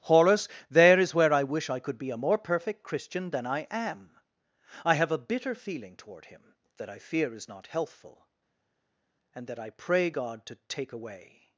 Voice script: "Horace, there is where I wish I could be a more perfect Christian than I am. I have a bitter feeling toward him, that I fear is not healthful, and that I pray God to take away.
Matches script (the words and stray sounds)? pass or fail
pass